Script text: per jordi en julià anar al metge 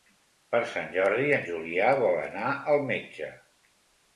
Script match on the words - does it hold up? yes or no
no